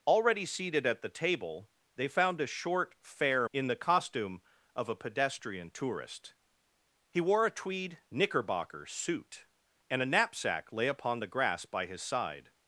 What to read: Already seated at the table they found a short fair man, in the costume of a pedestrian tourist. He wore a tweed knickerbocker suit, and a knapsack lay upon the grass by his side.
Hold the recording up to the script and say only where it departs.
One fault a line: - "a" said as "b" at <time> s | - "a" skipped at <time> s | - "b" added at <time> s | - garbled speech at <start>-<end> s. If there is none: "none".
- "man" skipped at 3.5 s